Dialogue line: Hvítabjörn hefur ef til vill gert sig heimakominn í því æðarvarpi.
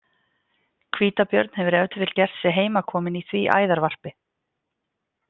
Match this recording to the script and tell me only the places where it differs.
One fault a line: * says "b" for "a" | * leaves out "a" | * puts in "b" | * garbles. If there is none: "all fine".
all fine